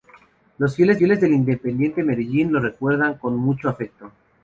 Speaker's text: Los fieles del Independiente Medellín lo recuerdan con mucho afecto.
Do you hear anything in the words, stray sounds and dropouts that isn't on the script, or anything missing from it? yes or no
yes